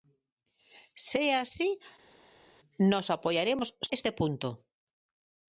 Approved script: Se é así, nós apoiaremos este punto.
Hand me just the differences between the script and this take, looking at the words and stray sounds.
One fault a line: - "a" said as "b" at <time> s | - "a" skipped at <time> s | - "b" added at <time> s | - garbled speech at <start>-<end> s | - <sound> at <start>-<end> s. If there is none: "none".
none